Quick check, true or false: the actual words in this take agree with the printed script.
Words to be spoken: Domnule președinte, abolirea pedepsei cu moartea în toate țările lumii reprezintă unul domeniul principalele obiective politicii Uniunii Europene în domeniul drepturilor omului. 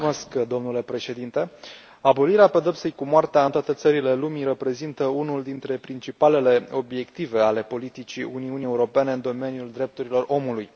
false